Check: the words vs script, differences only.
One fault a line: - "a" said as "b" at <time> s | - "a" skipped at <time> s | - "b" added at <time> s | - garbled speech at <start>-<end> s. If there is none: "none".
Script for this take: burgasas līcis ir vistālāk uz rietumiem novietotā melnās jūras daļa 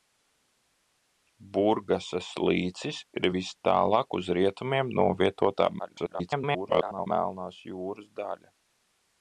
- garbled speech at 5.8-7.1 s